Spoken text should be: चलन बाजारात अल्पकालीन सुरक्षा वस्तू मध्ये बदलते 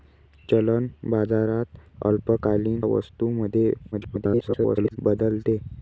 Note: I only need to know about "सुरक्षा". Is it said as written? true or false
false